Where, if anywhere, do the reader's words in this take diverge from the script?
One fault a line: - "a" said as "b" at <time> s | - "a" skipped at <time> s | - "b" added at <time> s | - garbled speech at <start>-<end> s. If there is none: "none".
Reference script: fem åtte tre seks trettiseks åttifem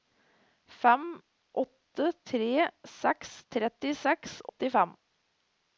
none